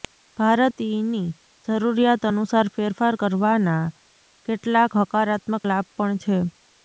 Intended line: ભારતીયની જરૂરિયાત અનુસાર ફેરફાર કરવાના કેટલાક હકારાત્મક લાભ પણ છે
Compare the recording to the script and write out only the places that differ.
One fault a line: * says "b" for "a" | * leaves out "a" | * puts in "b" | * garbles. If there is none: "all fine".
all fine